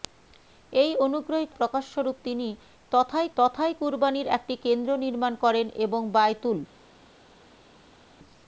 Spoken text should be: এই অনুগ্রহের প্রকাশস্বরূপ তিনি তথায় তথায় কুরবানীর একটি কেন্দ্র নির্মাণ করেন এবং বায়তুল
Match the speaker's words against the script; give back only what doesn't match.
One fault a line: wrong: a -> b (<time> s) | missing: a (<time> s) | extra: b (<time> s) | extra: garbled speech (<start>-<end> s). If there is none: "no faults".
no faults